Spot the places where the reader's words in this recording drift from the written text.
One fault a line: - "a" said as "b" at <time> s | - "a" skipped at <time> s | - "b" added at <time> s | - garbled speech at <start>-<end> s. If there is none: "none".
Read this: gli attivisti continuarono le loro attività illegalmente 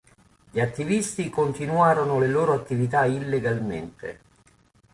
none